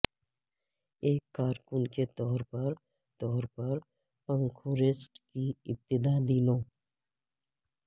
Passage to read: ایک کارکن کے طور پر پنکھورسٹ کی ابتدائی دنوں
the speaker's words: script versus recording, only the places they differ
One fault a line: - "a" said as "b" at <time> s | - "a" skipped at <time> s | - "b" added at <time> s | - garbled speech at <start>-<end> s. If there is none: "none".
- "طور پر" added at 3.2 s